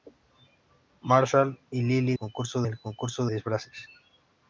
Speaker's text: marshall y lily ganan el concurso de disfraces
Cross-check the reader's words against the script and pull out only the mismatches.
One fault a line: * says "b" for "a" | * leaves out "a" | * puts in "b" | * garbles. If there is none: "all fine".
* says "concurso" for "ganan"
* leaves out "de"